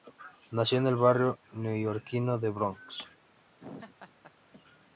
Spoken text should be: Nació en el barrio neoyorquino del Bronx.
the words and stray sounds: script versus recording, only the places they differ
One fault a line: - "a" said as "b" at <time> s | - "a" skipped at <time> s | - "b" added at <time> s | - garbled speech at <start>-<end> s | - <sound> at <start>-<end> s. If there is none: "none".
- laugh at 3.6-4.3 s